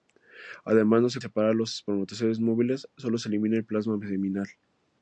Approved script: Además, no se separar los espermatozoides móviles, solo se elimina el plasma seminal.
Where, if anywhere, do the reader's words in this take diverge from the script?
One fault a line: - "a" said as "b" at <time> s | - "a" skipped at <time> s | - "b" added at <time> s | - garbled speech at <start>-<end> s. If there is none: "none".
none